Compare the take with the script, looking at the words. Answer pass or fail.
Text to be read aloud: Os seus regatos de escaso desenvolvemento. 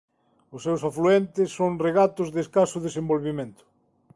fail